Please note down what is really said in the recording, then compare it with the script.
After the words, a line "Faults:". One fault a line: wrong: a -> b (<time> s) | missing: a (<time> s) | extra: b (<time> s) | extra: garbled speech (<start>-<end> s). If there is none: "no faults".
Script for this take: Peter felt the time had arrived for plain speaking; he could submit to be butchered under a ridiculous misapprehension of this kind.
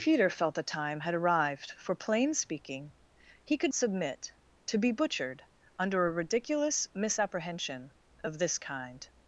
Peter felt the time had arrived for plain speaking; he could submit to be butchered under a ridiculous misapprehension of this kind.
Faults:
no faults